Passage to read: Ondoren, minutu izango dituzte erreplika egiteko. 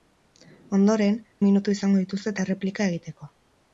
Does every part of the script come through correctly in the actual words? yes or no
yes